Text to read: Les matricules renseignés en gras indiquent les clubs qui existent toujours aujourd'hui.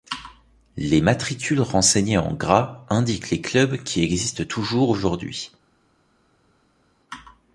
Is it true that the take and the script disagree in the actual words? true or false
false